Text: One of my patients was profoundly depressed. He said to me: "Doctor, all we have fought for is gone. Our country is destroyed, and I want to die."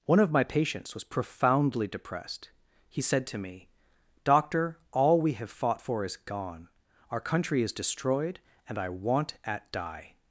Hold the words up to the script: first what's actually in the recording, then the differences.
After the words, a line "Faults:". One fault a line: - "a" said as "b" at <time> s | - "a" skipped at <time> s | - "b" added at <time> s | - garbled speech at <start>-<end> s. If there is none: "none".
One of my patients was profoundly depressed. He said to me: "Doctor, all we have fought for is gone. Our country is destroyed, and I want at die."
Faults:
- "to" said as "at" at 9.4 s